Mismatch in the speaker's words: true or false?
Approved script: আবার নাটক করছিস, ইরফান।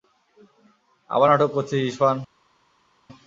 false